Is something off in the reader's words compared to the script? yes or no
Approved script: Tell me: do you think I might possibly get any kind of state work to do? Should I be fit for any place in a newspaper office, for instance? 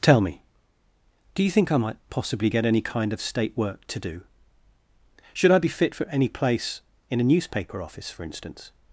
no